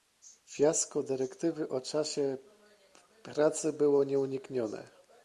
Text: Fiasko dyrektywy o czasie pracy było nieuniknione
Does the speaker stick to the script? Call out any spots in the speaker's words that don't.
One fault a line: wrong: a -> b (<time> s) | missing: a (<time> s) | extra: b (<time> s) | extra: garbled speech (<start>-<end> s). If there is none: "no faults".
no faults